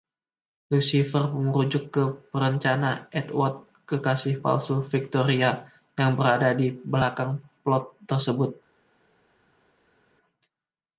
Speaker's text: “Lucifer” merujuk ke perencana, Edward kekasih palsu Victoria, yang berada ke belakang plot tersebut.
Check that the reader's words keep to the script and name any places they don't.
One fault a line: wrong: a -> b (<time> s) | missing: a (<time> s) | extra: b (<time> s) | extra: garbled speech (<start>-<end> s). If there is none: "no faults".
wrong: ke -> di (6.5 s)